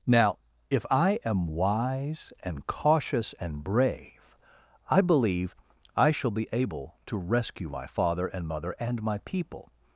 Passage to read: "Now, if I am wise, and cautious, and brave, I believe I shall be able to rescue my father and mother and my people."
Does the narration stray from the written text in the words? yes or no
no